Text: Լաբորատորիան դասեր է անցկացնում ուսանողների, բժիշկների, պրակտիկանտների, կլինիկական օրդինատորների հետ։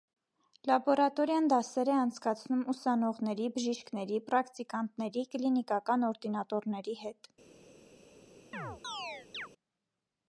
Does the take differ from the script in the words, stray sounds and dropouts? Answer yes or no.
yes